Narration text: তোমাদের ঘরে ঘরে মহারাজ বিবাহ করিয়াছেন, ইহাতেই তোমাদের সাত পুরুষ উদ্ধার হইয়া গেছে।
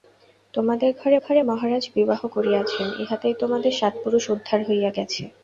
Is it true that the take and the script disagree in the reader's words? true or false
false